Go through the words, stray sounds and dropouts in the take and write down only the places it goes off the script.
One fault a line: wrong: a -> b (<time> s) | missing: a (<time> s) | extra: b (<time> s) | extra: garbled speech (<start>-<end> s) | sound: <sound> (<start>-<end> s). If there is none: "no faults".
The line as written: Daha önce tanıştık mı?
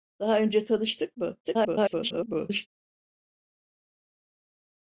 extra: garbled speech (1.4-2.7 s)